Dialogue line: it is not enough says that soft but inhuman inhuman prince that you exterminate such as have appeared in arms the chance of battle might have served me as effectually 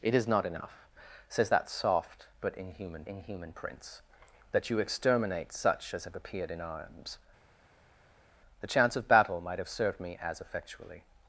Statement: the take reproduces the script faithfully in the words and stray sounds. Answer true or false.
true